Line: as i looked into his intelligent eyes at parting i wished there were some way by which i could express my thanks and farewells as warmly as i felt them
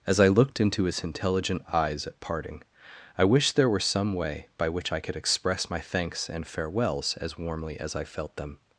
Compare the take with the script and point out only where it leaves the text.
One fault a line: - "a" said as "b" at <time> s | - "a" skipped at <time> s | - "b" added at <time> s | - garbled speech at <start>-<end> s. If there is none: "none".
none